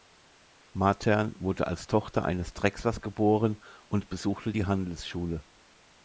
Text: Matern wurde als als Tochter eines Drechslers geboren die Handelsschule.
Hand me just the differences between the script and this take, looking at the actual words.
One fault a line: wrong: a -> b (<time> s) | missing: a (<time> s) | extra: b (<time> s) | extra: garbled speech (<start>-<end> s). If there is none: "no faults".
missing: als (1.9 s)
extra: und besuchte (3.9 s)